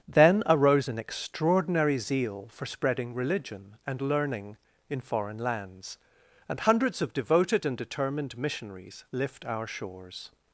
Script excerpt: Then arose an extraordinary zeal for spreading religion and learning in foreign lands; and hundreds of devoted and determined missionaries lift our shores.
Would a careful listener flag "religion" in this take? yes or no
no